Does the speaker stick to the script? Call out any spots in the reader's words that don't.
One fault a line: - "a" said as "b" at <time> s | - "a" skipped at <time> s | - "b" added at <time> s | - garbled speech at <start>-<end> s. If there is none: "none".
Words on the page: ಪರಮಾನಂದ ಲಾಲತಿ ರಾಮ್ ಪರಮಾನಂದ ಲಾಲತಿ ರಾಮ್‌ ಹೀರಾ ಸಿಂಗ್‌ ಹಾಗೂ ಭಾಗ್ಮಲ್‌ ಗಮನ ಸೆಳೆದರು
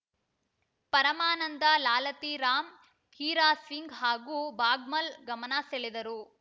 - "ಪರಮಾನಂದ ಲಾಲತಿ ರಾಮ್" skipped at 2.7 s